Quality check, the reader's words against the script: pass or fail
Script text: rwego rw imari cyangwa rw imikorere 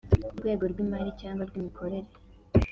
pass